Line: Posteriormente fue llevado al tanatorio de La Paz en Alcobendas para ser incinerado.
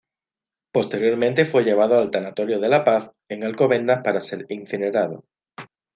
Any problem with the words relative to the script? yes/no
no